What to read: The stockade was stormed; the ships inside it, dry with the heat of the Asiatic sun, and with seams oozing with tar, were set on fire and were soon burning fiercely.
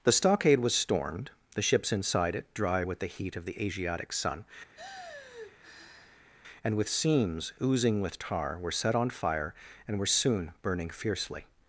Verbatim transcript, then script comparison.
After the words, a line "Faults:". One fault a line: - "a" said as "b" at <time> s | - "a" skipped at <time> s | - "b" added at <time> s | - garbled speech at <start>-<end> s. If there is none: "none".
The stockade was stormed; the ships inside it, dry with the heat of the Asiatic sun, and with seams oozing with tar, were set on fire and were soon burning fiercely.
Faults:
none